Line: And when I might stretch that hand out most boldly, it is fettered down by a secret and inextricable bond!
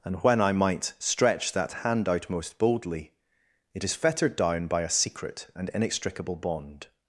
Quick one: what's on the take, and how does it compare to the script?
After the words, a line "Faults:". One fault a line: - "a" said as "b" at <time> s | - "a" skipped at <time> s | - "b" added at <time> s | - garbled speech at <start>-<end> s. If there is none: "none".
And when I might stretch that hand out most boldly, it is fettered down by a secret and inextricable bond!
Faults:
none